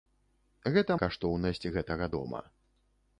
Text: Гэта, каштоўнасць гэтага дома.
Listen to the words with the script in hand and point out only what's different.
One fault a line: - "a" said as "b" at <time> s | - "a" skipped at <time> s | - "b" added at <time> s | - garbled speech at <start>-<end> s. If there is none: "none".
none